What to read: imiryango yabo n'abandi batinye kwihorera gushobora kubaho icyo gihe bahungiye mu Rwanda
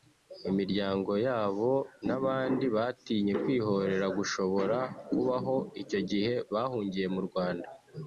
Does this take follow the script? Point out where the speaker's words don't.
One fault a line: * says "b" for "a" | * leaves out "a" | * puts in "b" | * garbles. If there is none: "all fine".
all fine